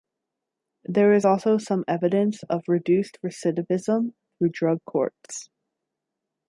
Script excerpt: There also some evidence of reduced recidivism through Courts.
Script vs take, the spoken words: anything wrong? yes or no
yes